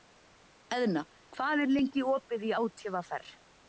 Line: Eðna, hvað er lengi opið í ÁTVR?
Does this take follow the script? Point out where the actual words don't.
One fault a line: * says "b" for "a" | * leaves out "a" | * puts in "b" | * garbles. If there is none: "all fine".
all fine